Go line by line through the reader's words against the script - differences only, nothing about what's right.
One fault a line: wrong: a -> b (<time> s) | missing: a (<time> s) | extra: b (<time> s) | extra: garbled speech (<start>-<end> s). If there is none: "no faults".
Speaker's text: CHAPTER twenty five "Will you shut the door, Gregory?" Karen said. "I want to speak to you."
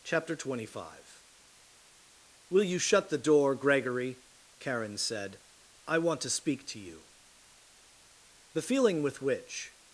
extra: The feeling with which (8.5 s)